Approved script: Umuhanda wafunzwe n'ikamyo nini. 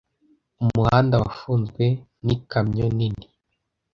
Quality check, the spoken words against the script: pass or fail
pass